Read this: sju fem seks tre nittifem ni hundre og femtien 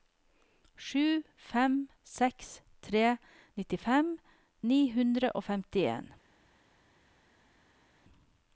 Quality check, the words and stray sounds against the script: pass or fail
pass